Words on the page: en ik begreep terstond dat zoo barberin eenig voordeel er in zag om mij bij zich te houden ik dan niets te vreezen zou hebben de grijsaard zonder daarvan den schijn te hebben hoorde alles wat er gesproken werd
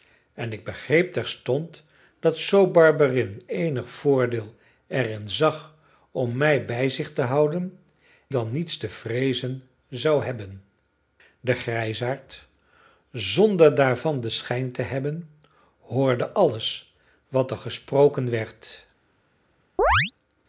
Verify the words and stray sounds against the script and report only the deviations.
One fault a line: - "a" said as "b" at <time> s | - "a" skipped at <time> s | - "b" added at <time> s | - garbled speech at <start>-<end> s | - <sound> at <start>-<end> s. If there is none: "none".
- "ik" skipped at 7.8 s
- chirp at 19.8-20.1 s